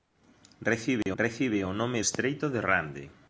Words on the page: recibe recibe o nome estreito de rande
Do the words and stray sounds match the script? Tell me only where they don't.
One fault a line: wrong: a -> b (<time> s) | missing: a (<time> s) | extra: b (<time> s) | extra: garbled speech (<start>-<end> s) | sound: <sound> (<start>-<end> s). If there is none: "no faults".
sound: dropout (1.0-1.1 s)